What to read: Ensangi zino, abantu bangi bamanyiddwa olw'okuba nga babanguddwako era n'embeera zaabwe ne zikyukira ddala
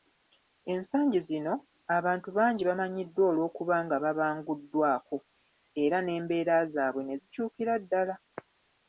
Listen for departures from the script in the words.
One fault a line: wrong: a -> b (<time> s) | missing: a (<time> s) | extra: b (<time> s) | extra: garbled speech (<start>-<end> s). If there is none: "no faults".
no faults